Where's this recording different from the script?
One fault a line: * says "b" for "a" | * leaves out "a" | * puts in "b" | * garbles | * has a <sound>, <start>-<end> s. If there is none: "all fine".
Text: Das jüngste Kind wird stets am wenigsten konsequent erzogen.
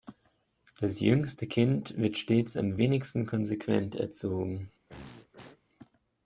* has a throat clearing, 4.9-5.6 s